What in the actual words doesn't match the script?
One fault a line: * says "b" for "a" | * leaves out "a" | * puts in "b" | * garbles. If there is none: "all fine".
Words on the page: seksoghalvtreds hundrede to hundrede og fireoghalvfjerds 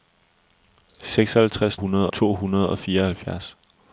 all fine